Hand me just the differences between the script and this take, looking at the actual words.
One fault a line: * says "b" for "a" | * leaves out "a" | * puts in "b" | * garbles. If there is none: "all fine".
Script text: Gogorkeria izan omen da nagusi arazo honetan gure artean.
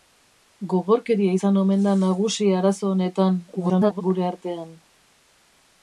* garbles